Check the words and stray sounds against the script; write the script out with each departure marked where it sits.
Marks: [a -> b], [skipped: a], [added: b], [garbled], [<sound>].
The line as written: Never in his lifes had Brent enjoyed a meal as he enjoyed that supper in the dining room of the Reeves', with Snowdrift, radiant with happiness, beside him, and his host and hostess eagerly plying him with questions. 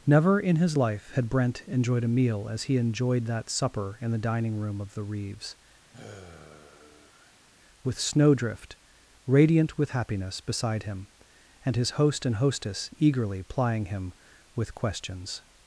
Never in his [lifes -> life] had Brent enjoyed a meal as he enjoyed that supper in the dining room of the Reeves', [sigh] with Snowdrift, radiant with happiness, beside him, and his host and hostess eagerly plying him with questions.